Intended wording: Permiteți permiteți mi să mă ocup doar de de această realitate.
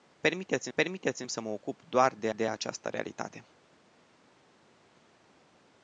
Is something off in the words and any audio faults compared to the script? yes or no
no